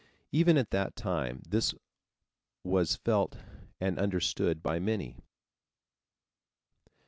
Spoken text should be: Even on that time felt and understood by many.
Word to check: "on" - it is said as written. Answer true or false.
false